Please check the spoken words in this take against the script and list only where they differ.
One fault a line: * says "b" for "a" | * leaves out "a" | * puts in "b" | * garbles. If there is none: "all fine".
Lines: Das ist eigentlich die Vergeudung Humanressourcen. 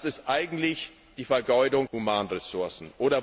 all fine